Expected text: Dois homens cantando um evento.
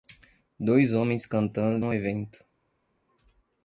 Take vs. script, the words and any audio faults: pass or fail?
pass